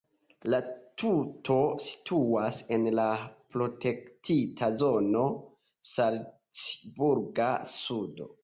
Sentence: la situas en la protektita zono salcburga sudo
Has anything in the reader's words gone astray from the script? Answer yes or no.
yes